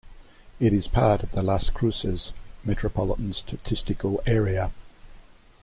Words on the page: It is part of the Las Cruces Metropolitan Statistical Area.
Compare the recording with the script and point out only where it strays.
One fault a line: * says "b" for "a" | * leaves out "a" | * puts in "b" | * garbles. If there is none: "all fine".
all fine